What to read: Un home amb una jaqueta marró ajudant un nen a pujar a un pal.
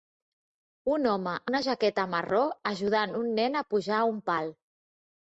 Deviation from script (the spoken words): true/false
true